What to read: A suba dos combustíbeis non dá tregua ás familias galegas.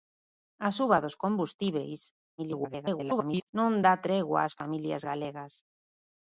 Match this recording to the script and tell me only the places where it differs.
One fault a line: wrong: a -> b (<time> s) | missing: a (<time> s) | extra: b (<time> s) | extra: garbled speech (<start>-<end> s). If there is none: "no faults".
extra: garbled speech (2.4-3.5 s)